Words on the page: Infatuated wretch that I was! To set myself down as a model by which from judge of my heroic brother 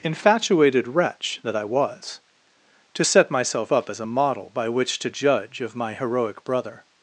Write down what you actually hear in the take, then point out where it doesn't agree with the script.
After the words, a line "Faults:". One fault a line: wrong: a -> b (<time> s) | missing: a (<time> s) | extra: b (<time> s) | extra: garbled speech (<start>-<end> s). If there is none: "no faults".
Infatuated wretch that I was! To set myself up as a model by which to judge of my heroic brother
Faults:
wrong: down -> up (3.7 s)
wrong: from -> to (5.0 s)